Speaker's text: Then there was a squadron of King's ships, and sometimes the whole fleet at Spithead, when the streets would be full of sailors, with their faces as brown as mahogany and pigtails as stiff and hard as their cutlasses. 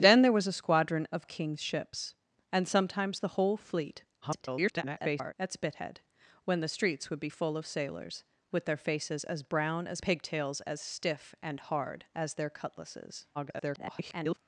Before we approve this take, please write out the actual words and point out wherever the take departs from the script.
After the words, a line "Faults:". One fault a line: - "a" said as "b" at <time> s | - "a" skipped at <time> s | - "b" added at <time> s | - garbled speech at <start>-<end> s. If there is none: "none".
Then there was a squadron of King's ships, and sometimes the whole fleet [garbled] at Spithead, when the streets would be full of sailors, with their faces as brown as pigtails as stiff and hard as their cutlasses. [garbled]
Faults:
- garbled speech at 4.2-5.3 s
- "mahogany and" skipped at 10.0 s
- garbled speech at 13.3-14.4 s